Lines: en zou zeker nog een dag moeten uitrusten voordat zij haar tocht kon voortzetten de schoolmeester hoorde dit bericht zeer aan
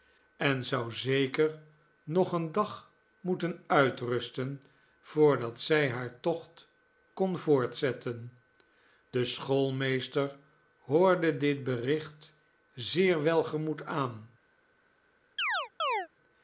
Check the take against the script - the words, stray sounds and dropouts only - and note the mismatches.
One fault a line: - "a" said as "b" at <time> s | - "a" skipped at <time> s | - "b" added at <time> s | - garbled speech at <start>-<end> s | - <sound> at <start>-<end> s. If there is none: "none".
- "welgemoed" added at 13.2 s
- chirp at 15.4-16.1 s